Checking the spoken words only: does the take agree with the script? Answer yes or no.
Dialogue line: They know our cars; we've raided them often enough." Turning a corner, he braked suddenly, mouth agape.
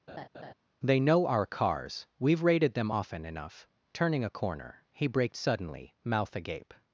yes